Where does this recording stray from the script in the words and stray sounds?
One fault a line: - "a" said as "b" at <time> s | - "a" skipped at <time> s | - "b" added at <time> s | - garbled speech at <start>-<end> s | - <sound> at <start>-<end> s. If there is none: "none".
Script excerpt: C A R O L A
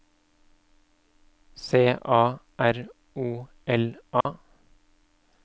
- dropout at 4.2-4.3 s